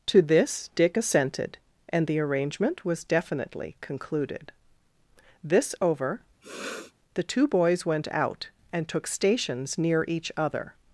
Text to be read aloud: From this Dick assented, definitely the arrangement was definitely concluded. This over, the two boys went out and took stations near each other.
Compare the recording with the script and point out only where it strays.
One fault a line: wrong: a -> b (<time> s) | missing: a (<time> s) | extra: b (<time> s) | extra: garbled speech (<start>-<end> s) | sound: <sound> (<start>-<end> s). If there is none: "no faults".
wrong: From -> To (0.1 s)
wrong: definitely -> and (1.9 s)
sound: sniff (6.4-6.9 s)